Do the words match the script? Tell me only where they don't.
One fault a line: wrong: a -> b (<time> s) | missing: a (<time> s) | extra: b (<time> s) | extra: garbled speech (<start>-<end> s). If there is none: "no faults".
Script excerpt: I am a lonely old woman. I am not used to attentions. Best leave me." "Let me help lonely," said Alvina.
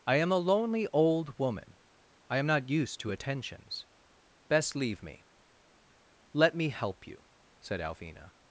wrong: lonely -> you (7.0 s)